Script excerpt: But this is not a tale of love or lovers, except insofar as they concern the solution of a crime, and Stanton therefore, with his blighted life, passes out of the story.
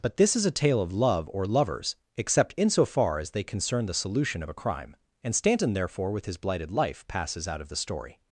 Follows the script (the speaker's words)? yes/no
no